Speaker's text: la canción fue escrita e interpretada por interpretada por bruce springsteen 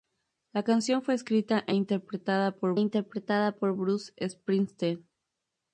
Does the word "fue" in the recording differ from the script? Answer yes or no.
no